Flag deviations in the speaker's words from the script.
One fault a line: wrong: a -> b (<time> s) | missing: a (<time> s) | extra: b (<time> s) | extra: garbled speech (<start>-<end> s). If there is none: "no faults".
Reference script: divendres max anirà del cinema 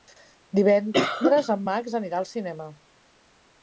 extra: en (1.6 s)
wrong: del -> al (2.2 s)